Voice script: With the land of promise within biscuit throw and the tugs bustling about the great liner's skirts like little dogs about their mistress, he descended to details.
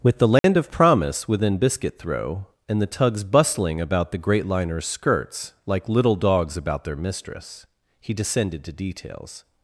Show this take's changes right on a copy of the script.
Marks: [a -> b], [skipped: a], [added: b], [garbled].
With the land of promise within biscuit throw and the tugs bustling about the great liner's skirts like little dogs about their mistress, he descended to details.